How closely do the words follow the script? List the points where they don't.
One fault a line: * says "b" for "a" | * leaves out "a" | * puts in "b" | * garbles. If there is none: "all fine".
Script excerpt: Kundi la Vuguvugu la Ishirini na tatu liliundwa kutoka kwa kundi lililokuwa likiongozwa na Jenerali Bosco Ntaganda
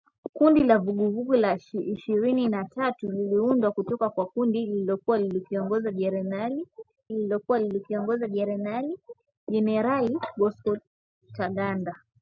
* puts in "lililokuwa likiongozwa na"